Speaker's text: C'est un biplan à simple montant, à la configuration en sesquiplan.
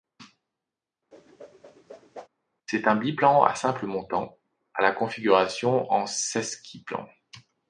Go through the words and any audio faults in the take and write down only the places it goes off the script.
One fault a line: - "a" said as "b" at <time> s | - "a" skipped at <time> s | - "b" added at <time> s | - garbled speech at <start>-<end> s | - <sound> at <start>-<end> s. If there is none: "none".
- whoosh at 1.1-2.3 s